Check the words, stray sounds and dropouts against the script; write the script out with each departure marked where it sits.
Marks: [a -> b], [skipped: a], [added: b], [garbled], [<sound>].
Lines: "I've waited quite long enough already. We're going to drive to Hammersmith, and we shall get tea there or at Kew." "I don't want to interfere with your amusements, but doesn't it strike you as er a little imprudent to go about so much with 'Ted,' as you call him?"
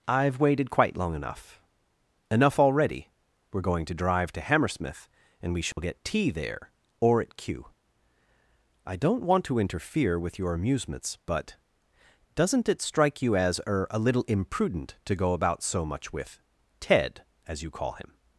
"I've waited quite long enough [added: enough] already. We're going to drive to Hammersmith, and we shall [dropout] get tea there or at Kew." "I don't want to interfere with your amusements, but doesn't it strike you as er a little imprudent to go about so much with 'Ted,' as you call him?"